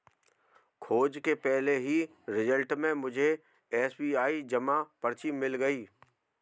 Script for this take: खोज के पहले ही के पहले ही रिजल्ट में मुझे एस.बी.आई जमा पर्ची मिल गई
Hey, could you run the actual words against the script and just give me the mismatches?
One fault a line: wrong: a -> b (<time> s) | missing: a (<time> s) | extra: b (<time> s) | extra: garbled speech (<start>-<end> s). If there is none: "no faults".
missing: के पहले ही (2.0 s)